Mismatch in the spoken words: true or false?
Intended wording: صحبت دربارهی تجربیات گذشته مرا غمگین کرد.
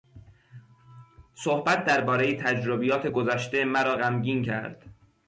false